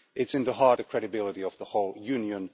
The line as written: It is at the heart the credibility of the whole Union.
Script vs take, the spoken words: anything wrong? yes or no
no